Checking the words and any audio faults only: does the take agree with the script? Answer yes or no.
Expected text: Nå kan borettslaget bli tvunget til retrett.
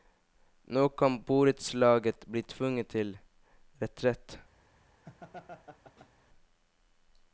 no